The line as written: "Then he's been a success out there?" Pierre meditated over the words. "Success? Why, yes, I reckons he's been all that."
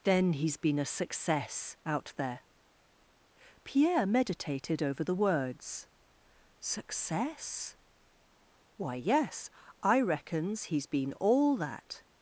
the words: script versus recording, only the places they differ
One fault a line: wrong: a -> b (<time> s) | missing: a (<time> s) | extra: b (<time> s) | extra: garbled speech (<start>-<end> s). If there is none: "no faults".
no faults